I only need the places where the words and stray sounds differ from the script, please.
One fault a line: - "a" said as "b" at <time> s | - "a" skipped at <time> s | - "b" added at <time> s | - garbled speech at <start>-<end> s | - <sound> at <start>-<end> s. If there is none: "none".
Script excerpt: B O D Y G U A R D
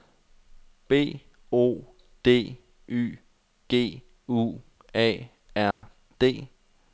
- dropout at 5.7-5.8 s